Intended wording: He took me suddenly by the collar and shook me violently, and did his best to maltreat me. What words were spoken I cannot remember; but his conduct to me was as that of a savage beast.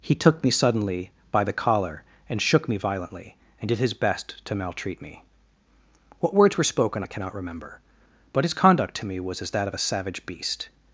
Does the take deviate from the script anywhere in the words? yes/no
no